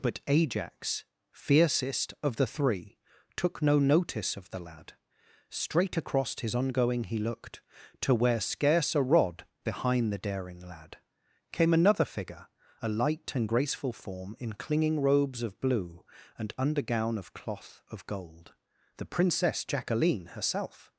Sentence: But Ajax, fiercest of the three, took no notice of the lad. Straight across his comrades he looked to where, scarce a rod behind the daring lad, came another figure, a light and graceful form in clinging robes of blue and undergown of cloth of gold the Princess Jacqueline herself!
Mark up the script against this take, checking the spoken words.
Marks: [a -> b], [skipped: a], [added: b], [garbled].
But Ajax, fiercest of the three, took no notice of the lad. Straight across his [comrades -> ongoing] he looked to where, scarce a rod behind the daring lad, came another figure, a light and graceful form in clinging robes of blue and undergown of cloth of gold the Princess Jacqueline herself!